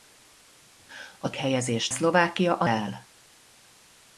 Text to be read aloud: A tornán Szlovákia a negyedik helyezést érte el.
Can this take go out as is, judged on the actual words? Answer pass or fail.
fail